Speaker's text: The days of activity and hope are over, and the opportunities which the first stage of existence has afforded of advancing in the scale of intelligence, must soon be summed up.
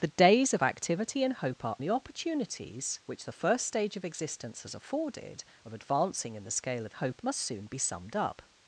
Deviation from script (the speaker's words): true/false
true